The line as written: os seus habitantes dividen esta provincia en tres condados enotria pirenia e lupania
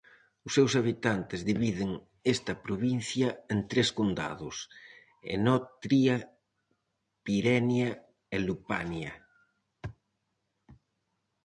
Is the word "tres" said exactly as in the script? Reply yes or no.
yes